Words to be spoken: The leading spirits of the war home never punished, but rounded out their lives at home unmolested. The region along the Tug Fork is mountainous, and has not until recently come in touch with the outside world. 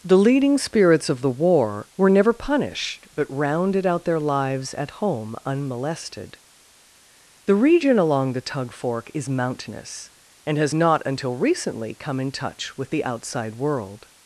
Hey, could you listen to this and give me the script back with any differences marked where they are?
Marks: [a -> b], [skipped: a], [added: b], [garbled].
The leading spirits of the war [home -> were] never punished, but rounded out their lives at home unmolested. The region along the Tug Fork is mountainous, and has not until recently come in touch with the outside world.